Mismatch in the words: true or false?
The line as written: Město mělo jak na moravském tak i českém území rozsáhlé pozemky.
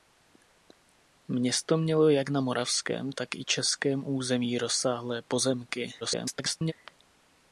true